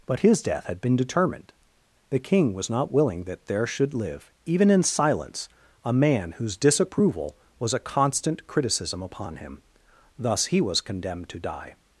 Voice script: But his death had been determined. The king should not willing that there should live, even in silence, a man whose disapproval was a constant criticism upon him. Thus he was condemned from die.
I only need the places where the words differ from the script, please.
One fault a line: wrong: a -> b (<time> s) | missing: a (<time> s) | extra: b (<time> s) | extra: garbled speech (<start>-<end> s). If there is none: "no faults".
wrong: should -> was (2.5 s)
wrong: from -> to (11.3 s)